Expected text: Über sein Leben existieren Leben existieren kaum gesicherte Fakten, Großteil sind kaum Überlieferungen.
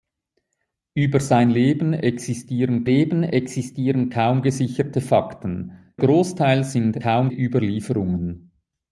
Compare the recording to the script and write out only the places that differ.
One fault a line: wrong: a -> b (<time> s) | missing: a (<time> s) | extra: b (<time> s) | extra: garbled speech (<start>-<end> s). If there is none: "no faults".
no faults